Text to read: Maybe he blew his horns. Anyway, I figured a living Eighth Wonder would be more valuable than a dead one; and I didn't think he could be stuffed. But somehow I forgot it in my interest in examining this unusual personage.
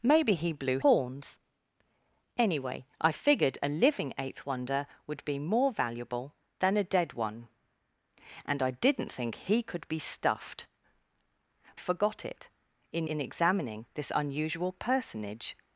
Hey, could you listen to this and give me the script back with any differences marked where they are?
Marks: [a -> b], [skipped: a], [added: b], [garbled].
Maybe he blew [skipped: his] horns. Anyway, I figured a living Eighth Wonder would be more valuable than a dead one; and I didn't think he could be stuffed. [skipped: But somehow I] forgot it in [skipped: my interest] in examining this unusual personage.